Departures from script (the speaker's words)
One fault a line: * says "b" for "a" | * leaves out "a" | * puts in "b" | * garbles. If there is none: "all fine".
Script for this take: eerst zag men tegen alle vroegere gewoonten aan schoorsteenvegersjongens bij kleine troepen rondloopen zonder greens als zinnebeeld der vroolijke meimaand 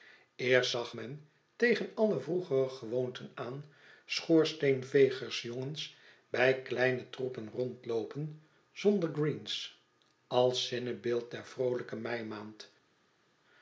all fine